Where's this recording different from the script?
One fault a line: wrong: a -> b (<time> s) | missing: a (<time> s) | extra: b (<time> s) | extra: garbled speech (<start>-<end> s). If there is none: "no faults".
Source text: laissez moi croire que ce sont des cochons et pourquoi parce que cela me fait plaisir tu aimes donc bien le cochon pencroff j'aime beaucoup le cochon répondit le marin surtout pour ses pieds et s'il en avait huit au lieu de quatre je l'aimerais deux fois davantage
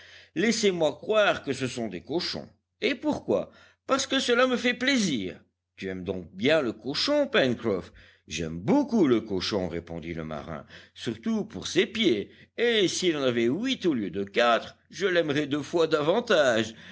no faults